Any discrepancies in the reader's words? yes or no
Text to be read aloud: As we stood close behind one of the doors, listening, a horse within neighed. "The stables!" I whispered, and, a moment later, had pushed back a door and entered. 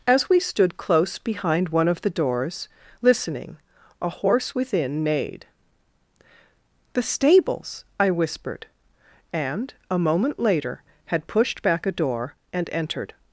no